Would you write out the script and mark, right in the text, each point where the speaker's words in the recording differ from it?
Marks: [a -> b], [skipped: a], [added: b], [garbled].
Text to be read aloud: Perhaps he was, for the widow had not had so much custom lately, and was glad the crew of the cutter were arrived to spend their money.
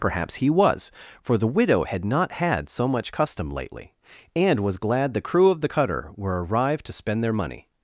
Perhaps he was, for the widow had not had so much custom lately, and was glad the crew of the cutter were arrived to spend their money.